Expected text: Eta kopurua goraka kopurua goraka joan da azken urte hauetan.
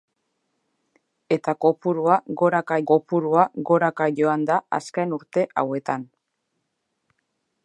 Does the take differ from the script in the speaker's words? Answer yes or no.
no